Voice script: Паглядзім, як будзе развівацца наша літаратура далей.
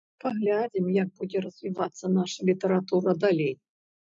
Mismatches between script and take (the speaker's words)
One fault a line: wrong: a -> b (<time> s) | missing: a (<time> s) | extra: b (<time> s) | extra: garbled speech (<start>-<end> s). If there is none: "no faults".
no faults